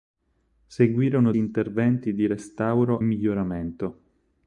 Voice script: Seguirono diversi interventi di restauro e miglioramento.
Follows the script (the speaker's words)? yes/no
no